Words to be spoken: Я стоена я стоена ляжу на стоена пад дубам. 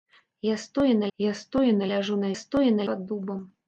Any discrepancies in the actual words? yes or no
no